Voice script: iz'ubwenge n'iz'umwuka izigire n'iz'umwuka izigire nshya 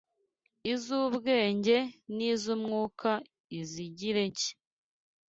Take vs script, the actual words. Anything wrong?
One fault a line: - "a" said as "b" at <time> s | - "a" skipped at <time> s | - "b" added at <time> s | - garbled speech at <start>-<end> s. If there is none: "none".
- "n'iz'umwuka izigire" skipped at 4.2 s